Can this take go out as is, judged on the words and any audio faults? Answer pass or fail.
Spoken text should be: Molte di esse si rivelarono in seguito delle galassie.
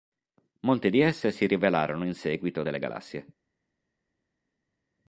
pass